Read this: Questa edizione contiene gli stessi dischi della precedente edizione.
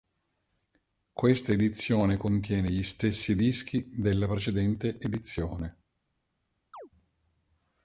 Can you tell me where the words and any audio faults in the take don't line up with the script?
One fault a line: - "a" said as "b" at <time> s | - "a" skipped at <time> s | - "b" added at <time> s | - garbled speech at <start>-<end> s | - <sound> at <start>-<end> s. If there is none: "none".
- chirp at 6.7-6.9 s